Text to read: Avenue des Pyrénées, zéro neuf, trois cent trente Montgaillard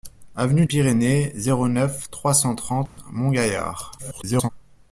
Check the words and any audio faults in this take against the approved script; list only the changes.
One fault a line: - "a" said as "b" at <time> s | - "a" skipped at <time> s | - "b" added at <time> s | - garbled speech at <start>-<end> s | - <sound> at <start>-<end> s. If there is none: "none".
- "des" skipped at 0.7 s
- dropout at 2.9-3.0 s
- garbled speech at 4.0-4.5 s